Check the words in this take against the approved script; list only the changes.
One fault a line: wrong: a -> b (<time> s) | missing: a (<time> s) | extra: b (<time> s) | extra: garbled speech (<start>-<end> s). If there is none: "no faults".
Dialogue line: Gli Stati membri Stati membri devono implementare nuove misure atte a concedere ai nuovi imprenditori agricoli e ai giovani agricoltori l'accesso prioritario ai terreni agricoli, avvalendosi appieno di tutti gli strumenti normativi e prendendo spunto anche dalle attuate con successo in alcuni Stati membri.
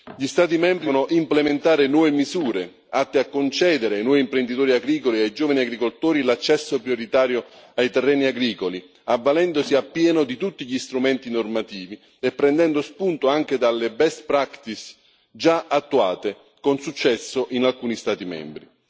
missing: Stati membri (0.8 s)
extra: best practice già (13.9 s)